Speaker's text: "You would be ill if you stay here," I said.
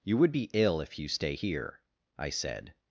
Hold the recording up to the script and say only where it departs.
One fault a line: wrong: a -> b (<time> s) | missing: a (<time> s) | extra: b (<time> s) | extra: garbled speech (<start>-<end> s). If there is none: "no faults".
no faults